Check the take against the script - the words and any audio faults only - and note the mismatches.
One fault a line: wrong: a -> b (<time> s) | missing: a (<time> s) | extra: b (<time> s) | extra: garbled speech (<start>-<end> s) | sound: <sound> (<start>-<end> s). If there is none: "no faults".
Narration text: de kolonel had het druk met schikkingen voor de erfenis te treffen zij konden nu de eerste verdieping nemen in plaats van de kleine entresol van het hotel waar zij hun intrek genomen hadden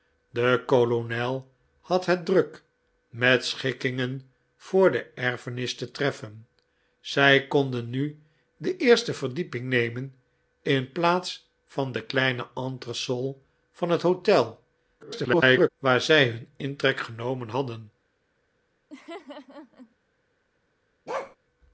extra: garbled speech (15.0-15.7 s)
sound: laugh (18.9-20.0 s)
sound: bark (21.1-21.4 s)